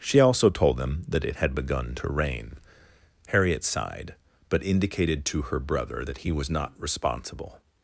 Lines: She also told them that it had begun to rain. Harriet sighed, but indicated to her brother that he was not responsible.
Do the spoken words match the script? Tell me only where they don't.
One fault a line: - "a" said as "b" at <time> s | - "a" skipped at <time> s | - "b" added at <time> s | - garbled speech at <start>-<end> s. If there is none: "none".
none